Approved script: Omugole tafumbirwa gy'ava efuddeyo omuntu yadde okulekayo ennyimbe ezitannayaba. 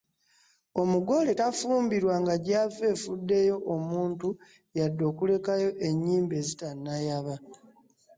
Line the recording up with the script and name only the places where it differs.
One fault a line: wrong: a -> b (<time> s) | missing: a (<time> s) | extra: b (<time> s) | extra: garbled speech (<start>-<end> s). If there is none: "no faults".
extra: nga (2.2 s)